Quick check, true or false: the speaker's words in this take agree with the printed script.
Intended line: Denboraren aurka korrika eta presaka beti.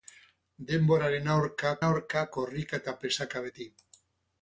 false